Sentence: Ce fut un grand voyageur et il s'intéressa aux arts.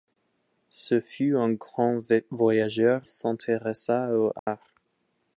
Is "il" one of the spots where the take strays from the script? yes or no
yes